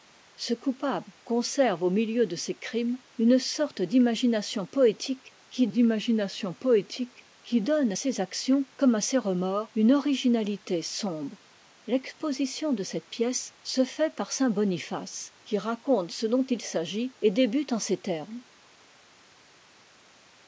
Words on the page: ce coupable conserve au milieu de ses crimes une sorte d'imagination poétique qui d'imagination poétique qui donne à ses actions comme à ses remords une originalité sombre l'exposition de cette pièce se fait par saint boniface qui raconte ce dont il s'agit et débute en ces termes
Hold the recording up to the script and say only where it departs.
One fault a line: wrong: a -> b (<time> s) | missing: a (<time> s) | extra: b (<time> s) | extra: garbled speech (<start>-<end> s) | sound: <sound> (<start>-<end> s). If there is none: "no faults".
no faults